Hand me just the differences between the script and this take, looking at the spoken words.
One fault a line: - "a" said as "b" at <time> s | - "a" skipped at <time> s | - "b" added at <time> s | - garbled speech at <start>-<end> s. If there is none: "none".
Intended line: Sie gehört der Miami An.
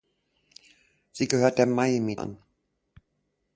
none